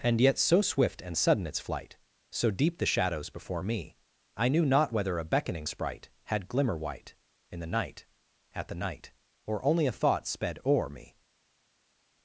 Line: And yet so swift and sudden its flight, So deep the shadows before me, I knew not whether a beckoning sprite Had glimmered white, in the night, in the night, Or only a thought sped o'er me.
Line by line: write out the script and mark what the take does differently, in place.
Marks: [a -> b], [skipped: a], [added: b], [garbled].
And yet so swift and sudden its flight, So deep the shadows before me, I knew not whether a beckoning sprite Had [glimmered -> glimmer] white, in the night, [in -> at] the night, Or only a thought sped o'er me.